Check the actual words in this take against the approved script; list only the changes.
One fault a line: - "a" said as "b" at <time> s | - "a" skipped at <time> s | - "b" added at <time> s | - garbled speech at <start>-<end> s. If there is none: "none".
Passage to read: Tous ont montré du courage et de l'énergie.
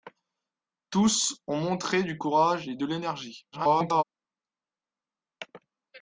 - garbled speech at 3.5-4.0 s